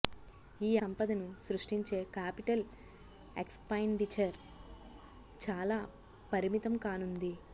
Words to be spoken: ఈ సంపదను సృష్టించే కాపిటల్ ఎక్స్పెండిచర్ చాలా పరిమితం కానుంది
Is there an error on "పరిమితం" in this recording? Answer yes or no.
no